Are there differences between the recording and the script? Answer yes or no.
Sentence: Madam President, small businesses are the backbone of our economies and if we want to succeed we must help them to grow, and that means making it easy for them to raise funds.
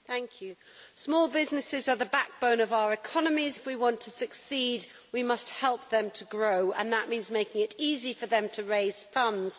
yes